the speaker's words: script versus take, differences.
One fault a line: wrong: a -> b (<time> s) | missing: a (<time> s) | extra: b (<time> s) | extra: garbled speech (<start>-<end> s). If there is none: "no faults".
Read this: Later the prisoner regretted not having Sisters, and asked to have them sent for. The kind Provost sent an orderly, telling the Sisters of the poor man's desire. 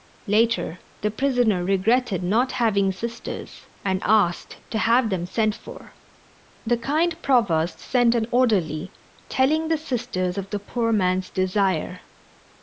no faults